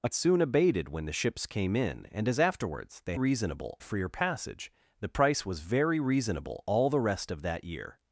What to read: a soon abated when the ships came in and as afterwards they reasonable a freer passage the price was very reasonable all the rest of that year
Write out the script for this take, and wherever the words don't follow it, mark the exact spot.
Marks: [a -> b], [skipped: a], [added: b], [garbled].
a soon abated when the ships came in and as afterwards they reasonable a freer passage the price was very reasonable all the rest of that year